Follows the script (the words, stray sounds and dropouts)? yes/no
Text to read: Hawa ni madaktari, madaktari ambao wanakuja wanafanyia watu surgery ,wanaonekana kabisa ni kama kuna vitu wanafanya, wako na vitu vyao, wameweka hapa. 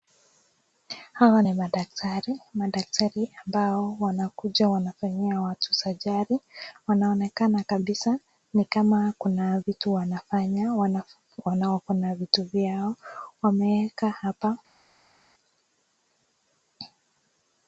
yes